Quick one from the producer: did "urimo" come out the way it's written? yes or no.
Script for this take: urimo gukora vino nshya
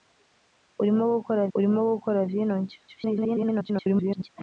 yes